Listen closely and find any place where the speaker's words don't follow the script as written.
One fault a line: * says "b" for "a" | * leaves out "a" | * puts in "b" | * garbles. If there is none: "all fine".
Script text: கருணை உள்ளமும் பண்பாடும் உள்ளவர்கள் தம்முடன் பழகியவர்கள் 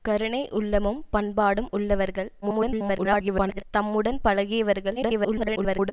* garbles
* garbles